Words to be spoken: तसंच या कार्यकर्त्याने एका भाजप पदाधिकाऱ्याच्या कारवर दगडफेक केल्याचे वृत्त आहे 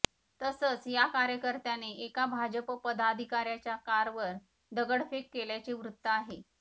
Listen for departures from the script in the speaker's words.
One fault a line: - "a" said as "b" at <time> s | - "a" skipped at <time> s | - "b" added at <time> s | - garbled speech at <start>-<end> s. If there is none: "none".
none